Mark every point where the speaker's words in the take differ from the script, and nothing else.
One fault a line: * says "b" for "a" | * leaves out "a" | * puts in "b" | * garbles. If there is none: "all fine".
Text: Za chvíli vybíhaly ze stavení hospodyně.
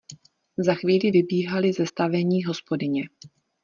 all fine